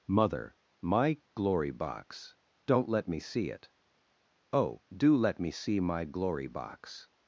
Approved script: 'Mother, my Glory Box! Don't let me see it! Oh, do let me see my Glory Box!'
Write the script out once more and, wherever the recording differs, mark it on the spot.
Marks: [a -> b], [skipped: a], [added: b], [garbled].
'Mother, my Glory Box! Don't let me see it! Oh, do let me see my Glory Box!'